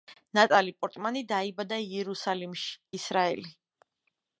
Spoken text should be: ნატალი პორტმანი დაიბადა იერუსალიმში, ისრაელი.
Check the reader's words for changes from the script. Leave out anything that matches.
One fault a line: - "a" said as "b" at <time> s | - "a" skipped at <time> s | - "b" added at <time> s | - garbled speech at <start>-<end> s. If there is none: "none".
none